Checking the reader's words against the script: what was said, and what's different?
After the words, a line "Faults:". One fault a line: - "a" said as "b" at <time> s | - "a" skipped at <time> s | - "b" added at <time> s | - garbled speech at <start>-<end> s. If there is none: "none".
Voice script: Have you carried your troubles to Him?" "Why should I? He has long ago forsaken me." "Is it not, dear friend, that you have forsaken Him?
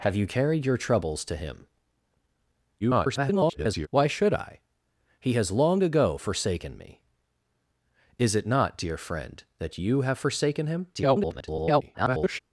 Have you carried your troubles to Him?" [garbled] "Why should I? He has long ago forsaken me." "Is it not, dear friend, that you have forsaken Him? [garbled]
Faults:
- garbled speech at 2.8-3.9 s
- garbled speech at 10.9-12.4 s